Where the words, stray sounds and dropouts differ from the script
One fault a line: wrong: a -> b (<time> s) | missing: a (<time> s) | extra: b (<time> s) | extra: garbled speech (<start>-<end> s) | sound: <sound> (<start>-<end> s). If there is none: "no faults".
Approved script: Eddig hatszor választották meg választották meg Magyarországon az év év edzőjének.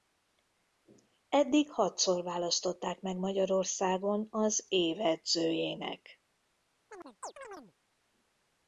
missing: választották meg (3.2 s)
missing: év (5.0 s)
sound: chirp (6.9-7.7 s)